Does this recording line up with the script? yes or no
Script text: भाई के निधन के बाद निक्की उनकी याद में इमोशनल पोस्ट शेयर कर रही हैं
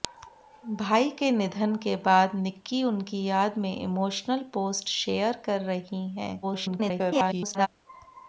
no